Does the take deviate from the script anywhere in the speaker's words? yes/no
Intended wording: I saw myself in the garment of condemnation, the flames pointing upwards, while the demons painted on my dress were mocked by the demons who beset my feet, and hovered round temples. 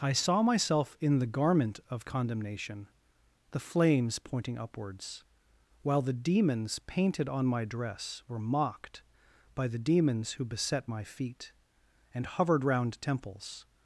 no